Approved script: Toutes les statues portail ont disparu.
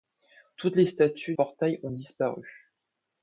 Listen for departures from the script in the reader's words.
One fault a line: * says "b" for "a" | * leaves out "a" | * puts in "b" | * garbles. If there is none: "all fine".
all fine